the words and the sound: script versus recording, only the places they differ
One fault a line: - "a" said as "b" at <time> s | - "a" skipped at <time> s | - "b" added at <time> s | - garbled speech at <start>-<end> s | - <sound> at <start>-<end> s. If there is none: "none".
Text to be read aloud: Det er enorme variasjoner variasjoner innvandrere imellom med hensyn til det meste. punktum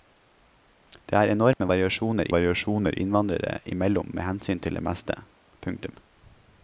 - dropout at 1.5-1.6 s